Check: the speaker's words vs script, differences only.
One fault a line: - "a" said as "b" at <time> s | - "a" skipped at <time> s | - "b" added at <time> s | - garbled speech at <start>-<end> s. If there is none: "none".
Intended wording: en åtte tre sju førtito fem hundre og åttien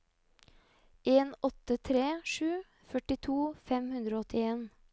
none